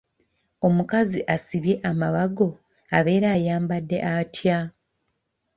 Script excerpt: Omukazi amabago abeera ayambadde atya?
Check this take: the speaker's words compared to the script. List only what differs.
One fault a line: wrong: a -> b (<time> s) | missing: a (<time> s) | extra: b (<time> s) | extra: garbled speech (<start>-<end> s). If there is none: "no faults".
extra: asibye (1.4 s)